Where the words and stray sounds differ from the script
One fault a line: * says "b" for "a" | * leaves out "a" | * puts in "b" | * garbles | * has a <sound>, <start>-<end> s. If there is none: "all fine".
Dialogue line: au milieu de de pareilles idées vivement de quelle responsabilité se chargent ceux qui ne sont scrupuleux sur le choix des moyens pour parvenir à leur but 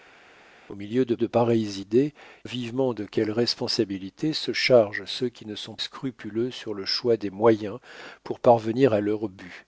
all fine